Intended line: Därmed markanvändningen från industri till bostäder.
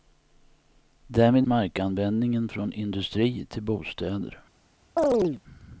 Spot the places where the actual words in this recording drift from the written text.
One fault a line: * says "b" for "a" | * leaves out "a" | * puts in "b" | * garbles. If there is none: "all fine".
all fine